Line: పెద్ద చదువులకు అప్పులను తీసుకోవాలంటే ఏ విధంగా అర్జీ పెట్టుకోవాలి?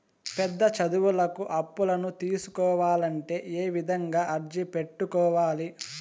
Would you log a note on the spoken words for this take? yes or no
no